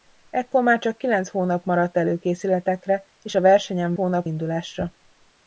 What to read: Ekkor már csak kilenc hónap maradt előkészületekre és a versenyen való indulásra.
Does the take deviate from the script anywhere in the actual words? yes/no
yes